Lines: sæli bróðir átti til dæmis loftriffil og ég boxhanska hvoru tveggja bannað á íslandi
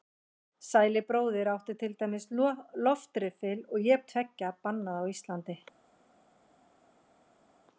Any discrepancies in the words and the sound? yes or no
yes